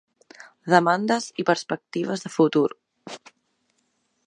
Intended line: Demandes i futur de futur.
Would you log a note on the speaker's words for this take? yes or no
yes